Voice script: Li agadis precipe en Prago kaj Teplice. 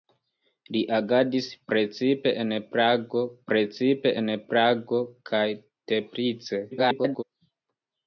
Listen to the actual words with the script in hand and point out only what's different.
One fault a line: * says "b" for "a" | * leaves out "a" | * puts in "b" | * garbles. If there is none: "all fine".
* puts in "precipe en Prago"
* garbles